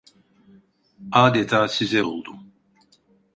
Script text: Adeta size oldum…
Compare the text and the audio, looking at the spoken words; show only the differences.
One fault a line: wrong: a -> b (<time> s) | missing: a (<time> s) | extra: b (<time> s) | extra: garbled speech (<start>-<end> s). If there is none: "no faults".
no faults